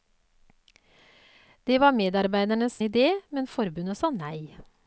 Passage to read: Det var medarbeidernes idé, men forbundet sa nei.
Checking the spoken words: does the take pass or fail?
pass